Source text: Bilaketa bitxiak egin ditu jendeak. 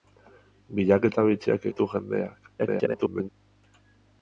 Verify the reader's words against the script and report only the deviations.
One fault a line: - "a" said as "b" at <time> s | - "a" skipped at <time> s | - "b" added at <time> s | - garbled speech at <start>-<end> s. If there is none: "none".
- "egin" skipped at 1.7 s
- garbled speech at 2.6-3.3 s